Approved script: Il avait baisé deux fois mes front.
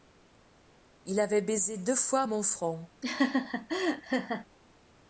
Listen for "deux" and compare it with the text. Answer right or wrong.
right